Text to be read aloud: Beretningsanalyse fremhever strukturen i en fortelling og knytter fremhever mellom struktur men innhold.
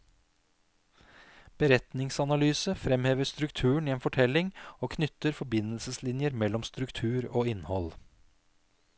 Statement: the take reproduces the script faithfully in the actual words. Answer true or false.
false